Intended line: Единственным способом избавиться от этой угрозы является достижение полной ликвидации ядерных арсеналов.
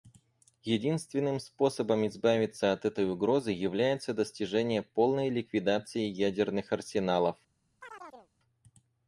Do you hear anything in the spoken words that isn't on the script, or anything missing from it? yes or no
no